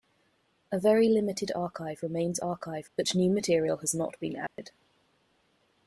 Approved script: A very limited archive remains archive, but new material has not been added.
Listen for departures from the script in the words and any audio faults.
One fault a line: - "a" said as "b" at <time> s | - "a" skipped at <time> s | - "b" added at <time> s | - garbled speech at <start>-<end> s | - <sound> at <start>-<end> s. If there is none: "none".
- dropout at 4.5-4.6 s